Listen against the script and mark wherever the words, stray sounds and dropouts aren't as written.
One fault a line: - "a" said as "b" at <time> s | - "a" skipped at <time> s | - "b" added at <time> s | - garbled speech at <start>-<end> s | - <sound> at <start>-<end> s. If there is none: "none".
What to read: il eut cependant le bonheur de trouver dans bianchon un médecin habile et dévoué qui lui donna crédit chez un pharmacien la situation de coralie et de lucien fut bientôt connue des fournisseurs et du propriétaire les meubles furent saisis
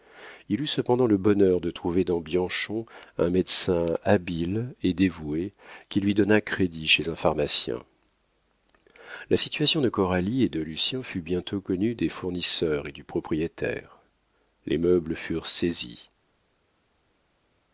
none